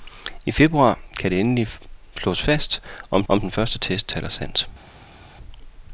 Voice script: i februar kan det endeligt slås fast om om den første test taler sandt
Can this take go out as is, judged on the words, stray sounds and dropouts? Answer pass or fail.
pass